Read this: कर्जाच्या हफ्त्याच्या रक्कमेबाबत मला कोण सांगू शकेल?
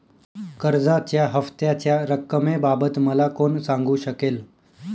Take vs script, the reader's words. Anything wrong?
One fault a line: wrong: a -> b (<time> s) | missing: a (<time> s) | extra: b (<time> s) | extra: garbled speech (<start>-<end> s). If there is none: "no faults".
no faults